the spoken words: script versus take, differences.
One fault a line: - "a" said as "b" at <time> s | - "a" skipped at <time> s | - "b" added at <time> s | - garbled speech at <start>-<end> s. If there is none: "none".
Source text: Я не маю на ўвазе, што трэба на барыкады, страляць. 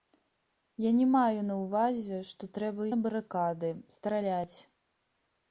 none